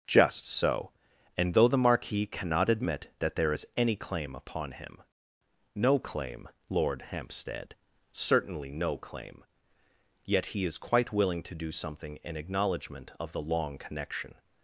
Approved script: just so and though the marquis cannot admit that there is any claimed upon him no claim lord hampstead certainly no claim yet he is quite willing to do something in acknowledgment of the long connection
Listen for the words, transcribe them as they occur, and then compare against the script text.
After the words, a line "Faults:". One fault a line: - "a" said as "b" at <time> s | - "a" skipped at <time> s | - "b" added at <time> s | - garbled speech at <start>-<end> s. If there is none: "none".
just so and though the marquis cannot admit that there is any claim upon him no claim lord hampstead certainly no claim yet he is quite willing to do something in acknowledgment of the long connection
Faults:
- "claimed" said as "claim" at 4.0 s